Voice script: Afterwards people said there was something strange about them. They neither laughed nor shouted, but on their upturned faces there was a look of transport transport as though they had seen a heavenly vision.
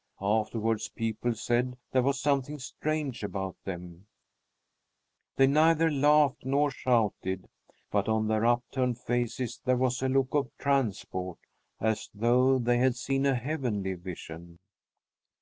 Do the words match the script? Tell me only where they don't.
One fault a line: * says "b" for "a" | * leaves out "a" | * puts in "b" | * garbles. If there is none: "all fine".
* leaves out "transport"